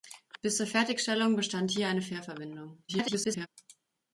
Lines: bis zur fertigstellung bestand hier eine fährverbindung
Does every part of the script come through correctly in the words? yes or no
no